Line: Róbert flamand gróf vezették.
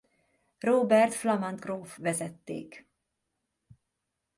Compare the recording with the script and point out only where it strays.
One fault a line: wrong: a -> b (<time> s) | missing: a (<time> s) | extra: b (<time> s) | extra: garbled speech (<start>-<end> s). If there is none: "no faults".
no faults